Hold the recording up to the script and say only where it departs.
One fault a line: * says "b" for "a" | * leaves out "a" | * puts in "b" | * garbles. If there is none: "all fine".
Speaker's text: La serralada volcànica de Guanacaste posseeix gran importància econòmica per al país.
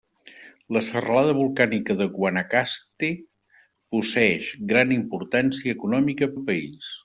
* leaves out "per"